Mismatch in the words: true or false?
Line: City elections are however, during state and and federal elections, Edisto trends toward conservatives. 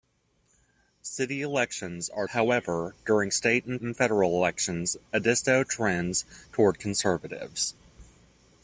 false